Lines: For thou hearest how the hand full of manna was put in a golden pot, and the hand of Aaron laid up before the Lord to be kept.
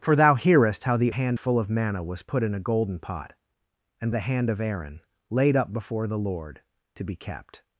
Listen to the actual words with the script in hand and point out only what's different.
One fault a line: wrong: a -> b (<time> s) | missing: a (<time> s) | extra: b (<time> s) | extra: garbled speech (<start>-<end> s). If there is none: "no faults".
no faults